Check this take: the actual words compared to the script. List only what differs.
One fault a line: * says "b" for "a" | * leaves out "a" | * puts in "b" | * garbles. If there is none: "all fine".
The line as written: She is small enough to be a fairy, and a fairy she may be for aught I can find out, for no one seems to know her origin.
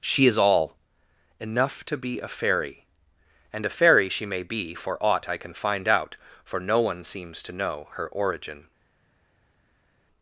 * says "all" for "small"